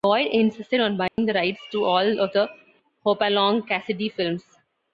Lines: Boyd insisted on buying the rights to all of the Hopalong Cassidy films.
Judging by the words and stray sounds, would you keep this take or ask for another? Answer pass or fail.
fail